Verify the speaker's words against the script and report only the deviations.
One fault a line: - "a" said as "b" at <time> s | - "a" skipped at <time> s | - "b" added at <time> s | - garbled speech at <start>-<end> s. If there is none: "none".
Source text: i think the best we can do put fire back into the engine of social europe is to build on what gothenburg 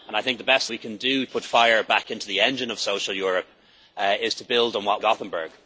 none